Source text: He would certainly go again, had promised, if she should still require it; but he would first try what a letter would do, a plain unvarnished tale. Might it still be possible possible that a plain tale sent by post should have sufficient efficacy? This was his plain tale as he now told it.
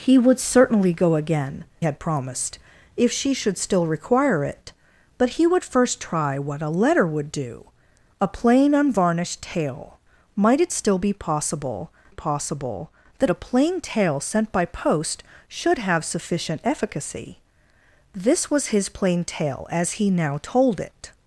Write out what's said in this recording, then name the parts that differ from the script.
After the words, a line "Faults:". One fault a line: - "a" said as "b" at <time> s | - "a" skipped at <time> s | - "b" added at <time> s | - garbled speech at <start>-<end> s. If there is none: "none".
He would certainly go again, had promised, if she should still require it; but he would first try what a letter would do, a plain unvarnished tale. Might it still be possible possible that a plain tale sent by post should have sufficient efficacy? This was his plain tale as he now told it.
Faults:
none